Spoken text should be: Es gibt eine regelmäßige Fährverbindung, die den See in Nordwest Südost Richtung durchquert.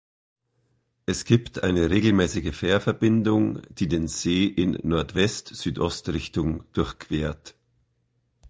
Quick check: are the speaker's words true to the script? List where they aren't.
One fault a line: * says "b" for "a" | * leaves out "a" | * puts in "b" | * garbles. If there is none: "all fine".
all fine